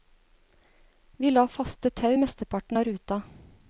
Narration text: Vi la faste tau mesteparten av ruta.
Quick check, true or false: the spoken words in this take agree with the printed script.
true